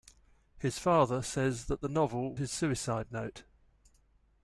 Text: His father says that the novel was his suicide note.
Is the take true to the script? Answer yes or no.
no